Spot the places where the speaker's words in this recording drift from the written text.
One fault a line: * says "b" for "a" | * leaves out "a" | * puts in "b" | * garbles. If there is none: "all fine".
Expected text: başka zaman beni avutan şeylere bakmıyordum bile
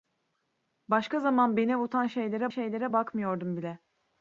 * puts in "şeylere"